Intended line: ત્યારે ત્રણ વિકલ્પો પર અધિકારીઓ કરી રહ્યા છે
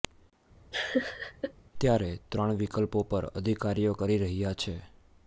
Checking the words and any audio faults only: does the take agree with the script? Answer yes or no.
no